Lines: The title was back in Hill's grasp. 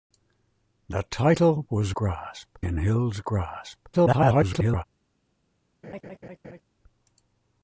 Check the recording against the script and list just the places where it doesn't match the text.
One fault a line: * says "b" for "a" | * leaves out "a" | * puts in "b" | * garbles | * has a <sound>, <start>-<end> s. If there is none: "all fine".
* says "grasp" for "back"
* garbles
* has a laugh, 5.8-6.6 s